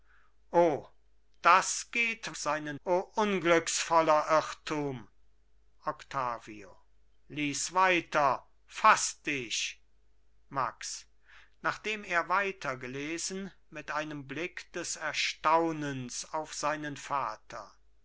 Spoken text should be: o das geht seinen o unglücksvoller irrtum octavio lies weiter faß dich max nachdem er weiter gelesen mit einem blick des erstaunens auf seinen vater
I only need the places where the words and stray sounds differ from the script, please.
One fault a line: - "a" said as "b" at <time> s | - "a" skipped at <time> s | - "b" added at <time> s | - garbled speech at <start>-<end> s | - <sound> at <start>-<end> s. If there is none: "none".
none